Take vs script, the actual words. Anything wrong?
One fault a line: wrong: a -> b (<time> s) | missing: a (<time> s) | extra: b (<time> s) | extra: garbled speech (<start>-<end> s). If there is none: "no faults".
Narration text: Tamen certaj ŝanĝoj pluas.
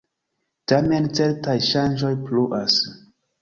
no faults